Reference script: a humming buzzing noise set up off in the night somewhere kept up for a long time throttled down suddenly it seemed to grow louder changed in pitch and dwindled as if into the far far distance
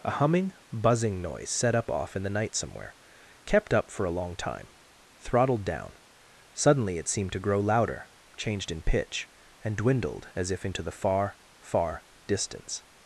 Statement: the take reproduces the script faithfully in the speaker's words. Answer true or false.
true